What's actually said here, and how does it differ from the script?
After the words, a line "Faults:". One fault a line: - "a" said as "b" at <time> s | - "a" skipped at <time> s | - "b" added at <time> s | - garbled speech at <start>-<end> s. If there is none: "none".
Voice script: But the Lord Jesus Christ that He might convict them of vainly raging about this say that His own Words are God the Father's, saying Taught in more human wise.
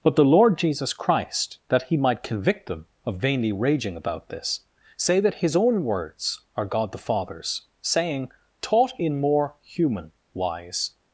But the Lord Jesus Christ that He might convict them of vainly raging about this say that His own Words are God the Father's, saying Taught in more human wise.
Faults:
none